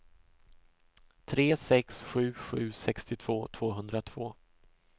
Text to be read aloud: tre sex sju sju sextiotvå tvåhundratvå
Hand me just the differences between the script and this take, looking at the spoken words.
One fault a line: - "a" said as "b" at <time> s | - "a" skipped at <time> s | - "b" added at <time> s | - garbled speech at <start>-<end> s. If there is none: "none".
none